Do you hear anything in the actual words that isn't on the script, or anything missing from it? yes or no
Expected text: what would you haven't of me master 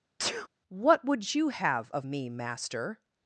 yes